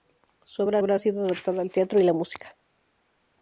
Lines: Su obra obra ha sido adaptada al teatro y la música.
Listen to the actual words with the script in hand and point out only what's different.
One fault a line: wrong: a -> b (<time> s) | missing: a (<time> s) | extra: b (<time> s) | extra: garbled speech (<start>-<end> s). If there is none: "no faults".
no faults